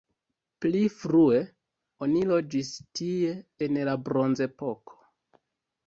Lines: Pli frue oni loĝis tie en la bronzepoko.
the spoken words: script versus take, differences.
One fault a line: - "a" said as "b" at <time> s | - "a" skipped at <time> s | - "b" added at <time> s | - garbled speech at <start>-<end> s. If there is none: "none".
none